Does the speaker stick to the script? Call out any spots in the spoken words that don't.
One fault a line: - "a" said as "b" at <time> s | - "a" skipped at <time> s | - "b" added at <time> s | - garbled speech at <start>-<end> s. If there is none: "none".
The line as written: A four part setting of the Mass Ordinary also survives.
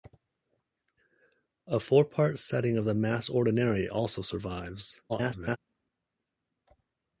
- garbled speech at 5.1-5.6 s